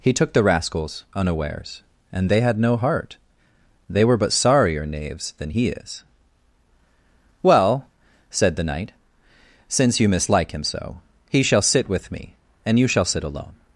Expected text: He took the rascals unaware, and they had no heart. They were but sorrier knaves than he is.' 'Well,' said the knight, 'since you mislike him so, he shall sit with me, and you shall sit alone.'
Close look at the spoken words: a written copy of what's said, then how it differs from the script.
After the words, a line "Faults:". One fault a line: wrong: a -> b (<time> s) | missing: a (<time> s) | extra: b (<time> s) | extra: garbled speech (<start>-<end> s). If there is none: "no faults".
He took the rascals unawares, and they had no heart. They were but sorrier knaves than he is.' 'Well,' said the knight, 'since you mislike him so, he shall sit with me, and you shall sit alone.'
Faults:
wrong: unaware -> unawares (1.1 s)